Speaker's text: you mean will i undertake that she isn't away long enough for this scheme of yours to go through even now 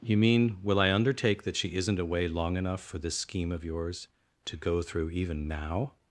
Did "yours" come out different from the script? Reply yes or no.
no